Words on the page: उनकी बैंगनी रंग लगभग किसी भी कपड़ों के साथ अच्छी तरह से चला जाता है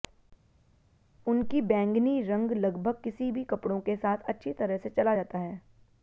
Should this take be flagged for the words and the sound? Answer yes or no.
no